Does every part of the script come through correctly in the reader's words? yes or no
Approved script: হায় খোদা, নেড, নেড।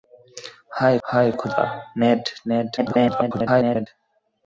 no